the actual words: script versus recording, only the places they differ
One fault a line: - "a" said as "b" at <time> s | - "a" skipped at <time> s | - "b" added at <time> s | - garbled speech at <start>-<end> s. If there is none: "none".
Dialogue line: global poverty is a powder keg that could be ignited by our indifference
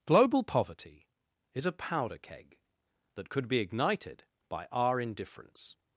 none